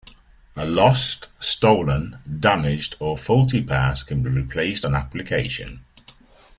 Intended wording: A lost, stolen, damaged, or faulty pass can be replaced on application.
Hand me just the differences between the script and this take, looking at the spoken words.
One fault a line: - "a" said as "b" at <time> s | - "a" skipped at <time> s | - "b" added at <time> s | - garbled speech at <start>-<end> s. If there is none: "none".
none